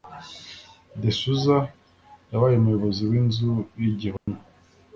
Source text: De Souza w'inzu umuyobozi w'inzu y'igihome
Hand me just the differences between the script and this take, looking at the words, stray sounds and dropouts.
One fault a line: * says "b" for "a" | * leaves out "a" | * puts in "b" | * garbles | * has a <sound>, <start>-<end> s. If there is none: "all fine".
* says "yabaye" for "w'inzu"
* has a dropout, 4.2-4.3 s